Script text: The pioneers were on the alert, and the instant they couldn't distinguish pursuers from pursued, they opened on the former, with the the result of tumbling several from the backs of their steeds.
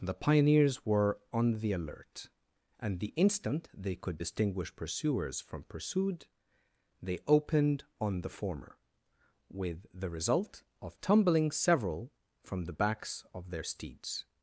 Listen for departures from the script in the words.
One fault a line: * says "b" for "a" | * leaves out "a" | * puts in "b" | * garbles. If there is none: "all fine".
* says "could" for "couldn't"
* leaves out "the"